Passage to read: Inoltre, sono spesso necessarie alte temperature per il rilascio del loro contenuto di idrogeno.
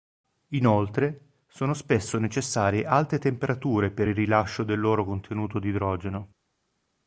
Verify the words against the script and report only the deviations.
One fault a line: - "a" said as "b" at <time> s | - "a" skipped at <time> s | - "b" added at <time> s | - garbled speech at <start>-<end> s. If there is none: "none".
none